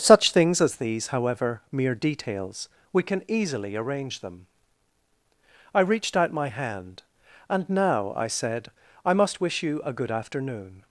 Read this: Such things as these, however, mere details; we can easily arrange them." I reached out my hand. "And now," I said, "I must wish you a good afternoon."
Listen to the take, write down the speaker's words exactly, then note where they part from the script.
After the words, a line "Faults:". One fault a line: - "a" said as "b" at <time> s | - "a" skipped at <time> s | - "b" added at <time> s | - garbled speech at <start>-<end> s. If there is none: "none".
Such things as these, however, mere details; we can easily arrange them." I reached out my hand. "And now," I said, "I must wish you a good afternoon."
Faults:
none